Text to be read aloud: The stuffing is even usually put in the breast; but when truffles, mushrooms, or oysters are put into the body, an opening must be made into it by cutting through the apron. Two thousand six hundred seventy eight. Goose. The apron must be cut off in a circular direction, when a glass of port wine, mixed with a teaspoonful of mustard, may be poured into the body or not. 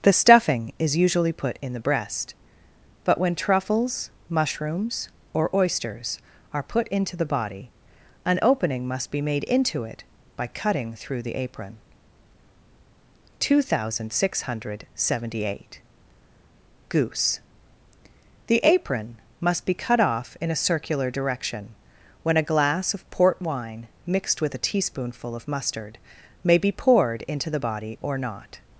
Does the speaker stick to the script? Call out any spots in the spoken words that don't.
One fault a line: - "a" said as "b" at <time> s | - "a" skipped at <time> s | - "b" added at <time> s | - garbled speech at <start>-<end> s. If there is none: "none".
- "even" skipped at 1.0 s